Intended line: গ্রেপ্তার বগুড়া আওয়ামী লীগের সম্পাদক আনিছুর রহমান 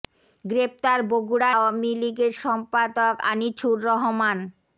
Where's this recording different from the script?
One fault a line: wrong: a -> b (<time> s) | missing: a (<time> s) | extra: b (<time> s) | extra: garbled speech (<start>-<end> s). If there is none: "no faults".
no faults